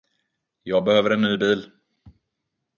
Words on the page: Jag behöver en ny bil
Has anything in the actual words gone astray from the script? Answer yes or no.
no